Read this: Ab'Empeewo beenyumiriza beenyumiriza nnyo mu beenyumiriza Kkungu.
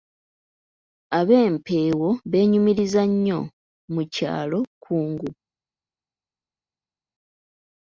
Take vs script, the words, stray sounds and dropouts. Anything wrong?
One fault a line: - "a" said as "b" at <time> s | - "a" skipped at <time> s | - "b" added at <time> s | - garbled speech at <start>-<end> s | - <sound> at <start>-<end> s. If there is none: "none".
- "beenyumiriza" skipped at 3.0 s
- "beenyumiriza" said as "kyalo" at 4.1 s